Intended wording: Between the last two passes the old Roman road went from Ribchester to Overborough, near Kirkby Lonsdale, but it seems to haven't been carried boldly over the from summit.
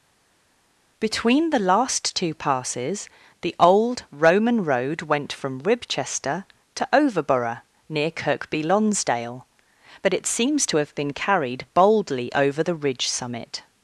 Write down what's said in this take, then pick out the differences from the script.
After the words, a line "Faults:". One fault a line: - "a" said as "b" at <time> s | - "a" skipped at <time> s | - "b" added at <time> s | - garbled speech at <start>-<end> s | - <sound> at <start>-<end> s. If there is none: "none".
Between the last two passes the old Roman road went from Ribchester to Overborough, near Kirkby Lonsdale, but it seems to have been carried boldly over the ridge summit.
Faults:
- "haven't" said as "have" at 10.7 s
- "from" said as "ridge" at 12.7 s